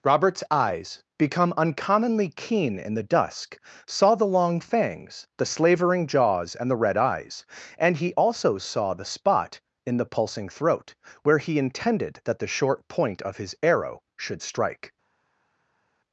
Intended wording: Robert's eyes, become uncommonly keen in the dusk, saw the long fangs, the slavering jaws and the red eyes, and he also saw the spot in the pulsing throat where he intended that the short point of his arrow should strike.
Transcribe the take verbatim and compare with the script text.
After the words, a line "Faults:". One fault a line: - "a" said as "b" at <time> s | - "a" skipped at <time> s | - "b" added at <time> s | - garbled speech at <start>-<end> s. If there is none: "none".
Robert's eyes, become uncommonly keen in the dusk, saw the long fangs, the slavering jaws and the red eyes, and he also saw the spot in the pulsing throat where he intended that the short point of his arrow should strike.
Faults:
none